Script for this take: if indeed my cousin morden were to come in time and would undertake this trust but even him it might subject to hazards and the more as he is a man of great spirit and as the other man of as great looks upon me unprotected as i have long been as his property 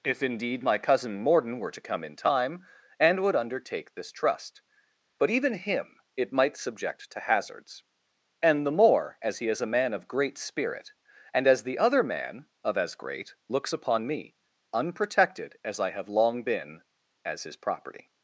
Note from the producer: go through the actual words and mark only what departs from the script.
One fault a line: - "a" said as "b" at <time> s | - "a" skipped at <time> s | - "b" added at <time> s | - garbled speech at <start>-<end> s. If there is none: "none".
none